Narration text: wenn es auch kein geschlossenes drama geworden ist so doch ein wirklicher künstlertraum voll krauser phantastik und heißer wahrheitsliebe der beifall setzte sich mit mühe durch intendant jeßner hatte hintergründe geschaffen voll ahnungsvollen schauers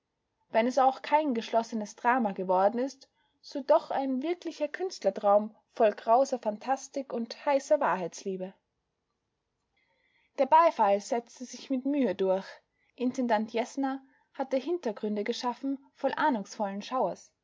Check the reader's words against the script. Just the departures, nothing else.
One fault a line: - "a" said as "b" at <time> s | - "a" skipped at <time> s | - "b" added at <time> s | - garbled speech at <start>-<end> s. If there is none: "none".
none